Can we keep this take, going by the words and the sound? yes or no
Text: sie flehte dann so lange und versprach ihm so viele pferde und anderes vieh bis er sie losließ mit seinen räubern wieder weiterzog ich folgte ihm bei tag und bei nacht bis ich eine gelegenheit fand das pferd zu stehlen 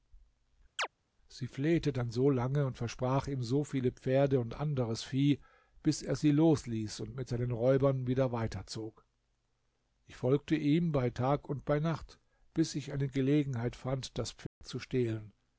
no